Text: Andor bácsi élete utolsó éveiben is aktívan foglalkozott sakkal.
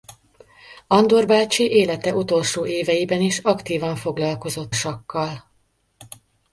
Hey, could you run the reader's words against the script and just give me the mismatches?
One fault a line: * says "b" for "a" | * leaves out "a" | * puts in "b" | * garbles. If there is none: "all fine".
all fine